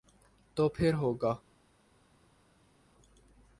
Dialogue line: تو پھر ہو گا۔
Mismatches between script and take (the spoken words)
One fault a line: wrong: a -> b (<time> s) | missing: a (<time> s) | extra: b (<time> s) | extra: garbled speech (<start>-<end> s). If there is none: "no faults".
no faults